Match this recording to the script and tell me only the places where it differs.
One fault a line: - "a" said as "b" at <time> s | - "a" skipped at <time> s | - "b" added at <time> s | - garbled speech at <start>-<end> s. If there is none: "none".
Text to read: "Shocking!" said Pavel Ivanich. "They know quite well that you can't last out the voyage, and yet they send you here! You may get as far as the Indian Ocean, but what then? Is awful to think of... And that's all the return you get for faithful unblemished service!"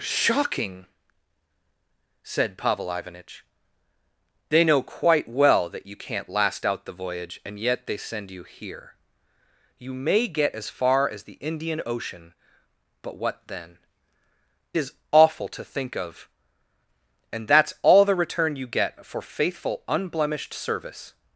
none